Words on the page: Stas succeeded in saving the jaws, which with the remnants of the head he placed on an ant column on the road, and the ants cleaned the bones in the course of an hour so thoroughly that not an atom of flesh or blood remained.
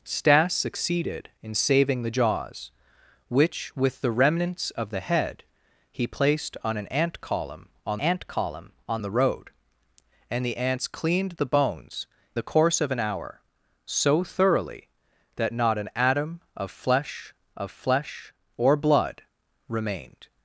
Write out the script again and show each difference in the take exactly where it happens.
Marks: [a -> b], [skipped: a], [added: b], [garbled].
Stas succeeded in saving the jaws, which with the remnants of the head he placed on an ant column on [added: ant column on] the road, and the ants cleaned the bones [skipped: in] the course of an hour so thoroughly that not an atom of flesh [added: of flesh] or blood remained.